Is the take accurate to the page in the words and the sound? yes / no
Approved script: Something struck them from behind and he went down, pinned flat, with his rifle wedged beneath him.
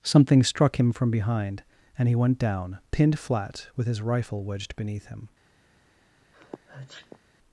no